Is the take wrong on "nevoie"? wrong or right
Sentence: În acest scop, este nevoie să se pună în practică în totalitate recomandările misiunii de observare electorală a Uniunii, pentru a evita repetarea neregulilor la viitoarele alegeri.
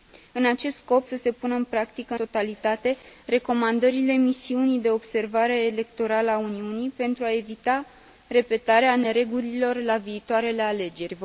wrong